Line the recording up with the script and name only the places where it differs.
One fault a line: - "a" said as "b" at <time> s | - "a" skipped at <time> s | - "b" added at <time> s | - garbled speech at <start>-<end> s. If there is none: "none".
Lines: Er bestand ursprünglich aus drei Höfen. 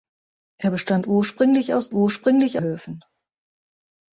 - "drei" said as "ursprünglich" at 1.9 s